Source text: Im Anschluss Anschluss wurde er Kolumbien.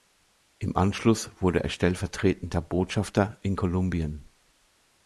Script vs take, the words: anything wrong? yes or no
yes